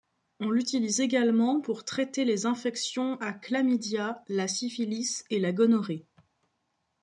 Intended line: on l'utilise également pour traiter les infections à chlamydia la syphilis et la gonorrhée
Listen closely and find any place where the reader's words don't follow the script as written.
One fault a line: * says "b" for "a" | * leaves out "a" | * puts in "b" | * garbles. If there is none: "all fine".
all fine